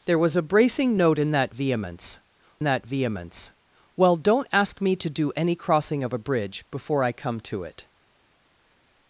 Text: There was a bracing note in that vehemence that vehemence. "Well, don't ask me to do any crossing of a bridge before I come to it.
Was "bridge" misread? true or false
false